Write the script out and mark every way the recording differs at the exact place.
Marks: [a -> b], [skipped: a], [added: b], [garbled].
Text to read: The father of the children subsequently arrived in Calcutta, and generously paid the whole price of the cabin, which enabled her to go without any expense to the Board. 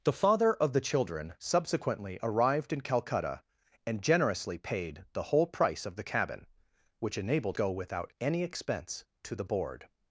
The father of the children subsequently arrived in Calcutta, and generously paid the whole price of the cabin, which enabled [skipped: her to] go without any expense to the Board.